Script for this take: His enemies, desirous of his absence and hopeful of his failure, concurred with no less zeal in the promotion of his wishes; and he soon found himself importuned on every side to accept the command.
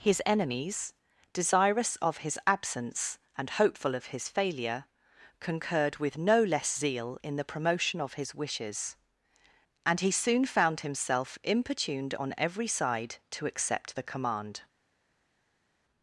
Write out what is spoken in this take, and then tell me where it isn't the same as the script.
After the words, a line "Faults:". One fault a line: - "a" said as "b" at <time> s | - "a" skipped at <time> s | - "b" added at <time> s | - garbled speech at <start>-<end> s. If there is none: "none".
His enemies, desirous of his absence and hopeful of his failure, concurred with no less zeal in the promotion of his wishes; and he soon found himself importuned on every side to accept the command.
Faults:
none